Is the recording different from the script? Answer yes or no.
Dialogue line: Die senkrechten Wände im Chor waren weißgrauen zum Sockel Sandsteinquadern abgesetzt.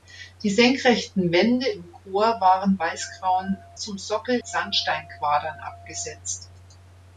no